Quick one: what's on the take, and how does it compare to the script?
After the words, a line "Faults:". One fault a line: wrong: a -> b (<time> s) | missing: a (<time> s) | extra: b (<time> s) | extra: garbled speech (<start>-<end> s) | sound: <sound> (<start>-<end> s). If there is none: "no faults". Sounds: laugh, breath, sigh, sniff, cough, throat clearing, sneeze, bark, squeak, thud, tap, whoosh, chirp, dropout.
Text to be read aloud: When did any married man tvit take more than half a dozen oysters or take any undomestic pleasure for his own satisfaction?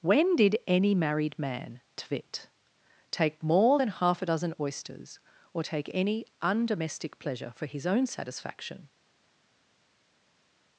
When did any married man tvit take more than half a dozen oysters or take any undomestic pleasure for his own satisfaction?
Faults:
no faults